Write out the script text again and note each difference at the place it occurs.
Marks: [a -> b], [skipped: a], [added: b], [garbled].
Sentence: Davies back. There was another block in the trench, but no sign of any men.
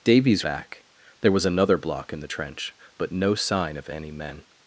Davies back. There was another block in the trench, but no sign of any men.